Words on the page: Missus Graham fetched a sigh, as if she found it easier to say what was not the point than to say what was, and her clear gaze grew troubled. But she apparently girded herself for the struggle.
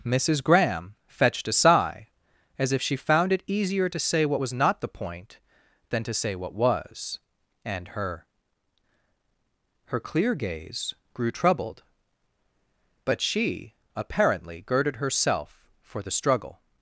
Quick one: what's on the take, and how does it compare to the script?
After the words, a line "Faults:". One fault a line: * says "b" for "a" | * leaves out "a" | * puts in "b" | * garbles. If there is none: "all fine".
Missus Graham fetched a sigh, as if she found it easier to say what was not the point than to say what was, and her her clear gaze grew troubled. But she apparently girded herself for the struggle.
Faults:
* puts in "her"